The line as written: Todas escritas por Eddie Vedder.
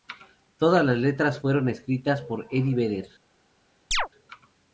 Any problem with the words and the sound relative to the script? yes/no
yes